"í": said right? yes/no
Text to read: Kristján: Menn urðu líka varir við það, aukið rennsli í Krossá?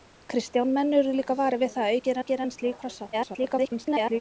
yes